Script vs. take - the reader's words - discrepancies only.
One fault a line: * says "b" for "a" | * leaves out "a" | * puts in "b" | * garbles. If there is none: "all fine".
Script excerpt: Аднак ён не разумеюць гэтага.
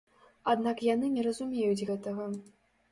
* says "яны" for "ён"